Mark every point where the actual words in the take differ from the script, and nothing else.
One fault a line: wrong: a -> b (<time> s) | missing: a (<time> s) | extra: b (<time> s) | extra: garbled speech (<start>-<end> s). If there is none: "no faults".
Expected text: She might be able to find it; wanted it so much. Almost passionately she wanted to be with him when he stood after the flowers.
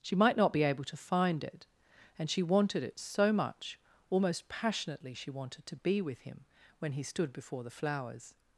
extra: not (0.4 s)
extra: and she (2.2 s)
wrong: after -> before (7.3 s)